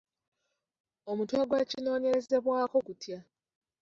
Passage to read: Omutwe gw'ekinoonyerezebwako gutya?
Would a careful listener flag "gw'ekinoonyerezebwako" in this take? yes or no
no